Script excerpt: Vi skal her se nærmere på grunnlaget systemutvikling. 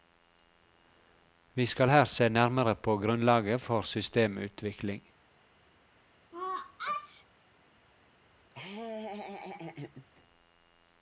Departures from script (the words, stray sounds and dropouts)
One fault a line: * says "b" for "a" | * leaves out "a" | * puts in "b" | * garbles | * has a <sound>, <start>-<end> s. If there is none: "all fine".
* puts in "for"
* has a sneeze, 6.3-7.2 s
* has a laugh, 8.5-10.1 s